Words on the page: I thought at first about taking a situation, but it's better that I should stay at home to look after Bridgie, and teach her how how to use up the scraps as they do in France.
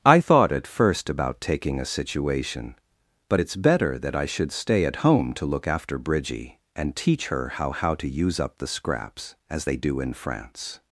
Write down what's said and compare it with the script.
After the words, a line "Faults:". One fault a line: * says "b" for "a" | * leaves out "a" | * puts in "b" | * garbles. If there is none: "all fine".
I thought at first about taking a situation, but it's better that I should stay at home to look after Bridgie, and teach her how how to use up the scraps as they do in France.
Faults:
all fine